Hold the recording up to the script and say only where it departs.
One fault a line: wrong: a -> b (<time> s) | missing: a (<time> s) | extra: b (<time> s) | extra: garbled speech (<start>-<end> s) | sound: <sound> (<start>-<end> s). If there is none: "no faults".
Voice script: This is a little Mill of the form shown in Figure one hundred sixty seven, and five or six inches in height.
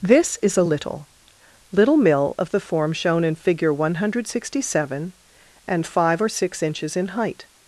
extra: little (1.7 s)